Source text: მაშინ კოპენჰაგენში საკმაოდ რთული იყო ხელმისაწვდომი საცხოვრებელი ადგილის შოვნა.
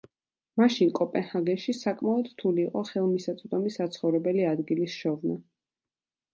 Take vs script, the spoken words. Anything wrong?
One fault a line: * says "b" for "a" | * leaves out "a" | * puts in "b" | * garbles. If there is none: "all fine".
all fine